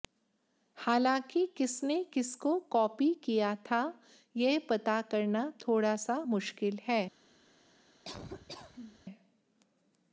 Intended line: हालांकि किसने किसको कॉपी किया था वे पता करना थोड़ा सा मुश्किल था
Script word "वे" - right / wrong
wrong